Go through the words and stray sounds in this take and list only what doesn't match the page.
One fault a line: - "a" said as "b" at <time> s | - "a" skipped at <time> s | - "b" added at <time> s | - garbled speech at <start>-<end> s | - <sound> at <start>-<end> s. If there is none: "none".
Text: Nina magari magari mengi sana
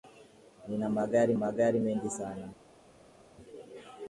none